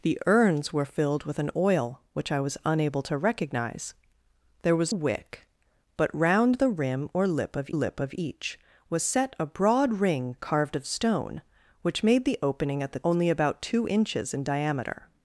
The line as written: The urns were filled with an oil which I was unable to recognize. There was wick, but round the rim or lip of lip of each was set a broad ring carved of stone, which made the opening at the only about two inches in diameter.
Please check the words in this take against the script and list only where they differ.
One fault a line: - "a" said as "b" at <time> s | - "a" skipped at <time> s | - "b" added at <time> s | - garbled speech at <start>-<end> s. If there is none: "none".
none